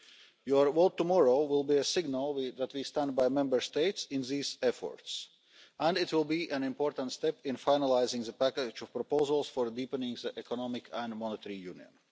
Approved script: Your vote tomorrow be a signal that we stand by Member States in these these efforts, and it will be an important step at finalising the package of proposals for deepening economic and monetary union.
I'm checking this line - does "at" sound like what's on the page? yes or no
no